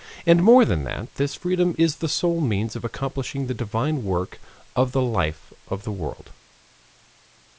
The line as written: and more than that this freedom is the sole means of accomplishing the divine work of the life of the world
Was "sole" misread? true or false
false